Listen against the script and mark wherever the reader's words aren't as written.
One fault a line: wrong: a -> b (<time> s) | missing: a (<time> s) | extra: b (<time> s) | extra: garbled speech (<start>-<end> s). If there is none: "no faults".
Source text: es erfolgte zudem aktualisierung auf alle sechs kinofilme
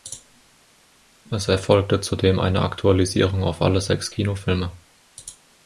extra: eine (2.4 s)